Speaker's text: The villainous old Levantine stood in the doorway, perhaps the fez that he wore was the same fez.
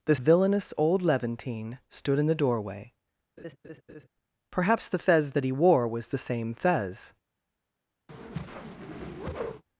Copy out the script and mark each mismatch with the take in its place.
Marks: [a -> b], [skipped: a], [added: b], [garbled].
The villainous old Levantine stood in the doorway, perhaps the fez that he wore was the same fez.